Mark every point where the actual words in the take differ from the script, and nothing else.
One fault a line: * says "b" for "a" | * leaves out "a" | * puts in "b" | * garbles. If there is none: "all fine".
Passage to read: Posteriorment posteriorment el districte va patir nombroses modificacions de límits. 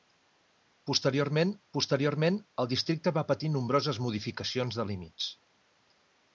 all fine